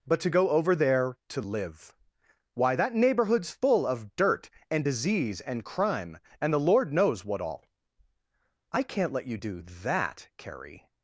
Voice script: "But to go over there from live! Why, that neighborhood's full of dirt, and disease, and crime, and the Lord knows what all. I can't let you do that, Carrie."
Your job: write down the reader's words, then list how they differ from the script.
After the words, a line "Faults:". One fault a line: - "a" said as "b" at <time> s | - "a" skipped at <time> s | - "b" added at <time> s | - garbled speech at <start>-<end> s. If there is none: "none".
"But to go over there to live! Why, that neighborhood's full of dirt, and disease, and crime, and the Lord knows what all. I can't let you do that, Carrie."
Faults:
- "from" said as "to" at 1.3 s